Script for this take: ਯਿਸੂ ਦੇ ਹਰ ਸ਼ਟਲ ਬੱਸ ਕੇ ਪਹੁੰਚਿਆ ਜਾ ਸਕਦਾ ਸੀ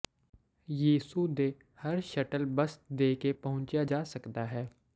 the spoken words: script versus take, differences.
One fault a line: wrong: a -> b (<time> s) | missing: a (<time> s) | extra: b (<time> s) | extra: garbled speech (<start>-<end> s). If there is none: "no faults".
extra: ਦੇ (2.9 s)
wrong: ਸੀ -> ਹੈ (4.5 s)